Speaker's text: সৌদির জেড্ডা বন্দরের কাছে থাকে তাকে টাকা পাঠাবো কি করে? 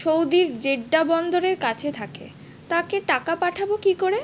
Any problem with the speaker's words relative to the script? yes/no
no